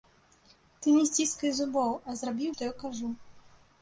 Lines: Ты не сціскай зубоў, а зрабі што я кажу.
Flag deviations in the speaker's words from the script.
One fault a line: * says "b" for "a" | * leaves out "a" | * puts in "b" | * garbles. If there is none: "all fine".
all fine